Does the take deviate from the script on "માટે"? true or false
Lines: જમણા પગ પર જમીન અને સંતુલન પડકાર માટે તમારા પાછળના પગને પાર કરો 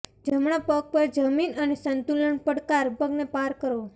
true